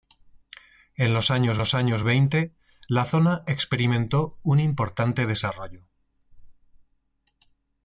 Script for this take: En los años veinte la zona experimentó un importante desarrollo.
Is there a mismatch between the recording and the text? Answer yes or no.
yes